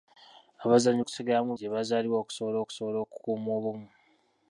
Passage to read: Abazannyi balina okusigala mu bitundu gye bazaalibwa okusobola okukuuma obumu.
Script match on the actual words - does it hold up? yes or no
no